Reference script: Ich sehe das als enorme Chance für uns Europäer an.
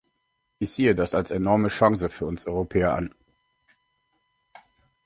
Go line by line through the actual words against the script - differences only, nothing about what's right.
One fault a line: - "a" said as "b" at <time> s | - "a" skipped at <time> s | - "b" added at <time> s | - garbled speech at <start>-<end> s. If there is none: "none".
none